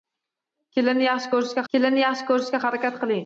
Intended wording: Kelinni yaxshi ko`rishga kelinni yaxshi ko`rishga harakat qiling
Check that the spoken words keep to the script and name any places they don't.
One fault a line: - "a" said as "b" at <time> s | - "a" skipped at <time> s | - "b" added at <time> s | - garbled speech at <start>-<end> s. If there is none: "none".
none